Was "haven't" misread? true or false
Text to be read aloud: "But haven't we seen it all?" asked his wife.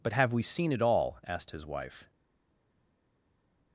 true